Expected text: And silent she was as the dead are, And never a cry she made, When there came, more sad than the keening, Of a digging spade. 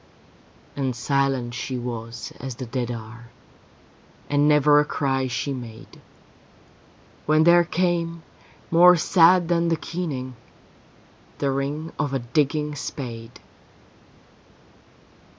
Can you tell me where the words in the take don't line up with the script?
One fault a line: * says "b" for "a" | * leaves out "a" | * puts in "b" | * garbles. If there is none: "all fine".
* puts in "The ring"